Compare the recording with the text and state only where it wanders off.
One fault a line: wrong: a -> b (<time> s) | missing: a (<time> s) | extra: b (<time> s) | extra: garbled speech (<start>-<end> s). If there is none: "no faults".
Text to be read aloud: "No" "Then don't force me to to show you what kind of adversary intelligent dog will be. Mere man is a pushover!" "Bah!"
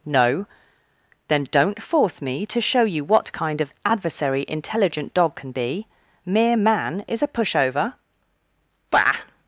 missing: to (2.6 s)
wrong: will -> can (5.3 s)